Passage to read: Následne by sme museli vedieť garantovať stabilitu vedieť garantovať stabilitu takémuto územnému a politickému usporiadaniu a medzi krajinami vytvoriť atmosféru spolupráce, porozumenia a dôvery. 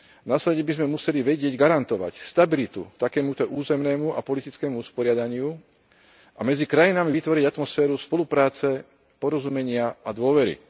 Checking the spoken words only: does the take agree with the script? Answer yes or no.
no